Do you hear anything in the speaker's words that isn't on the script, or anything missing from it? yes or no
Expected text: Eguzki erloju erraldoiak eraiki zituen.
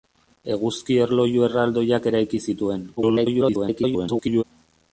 yes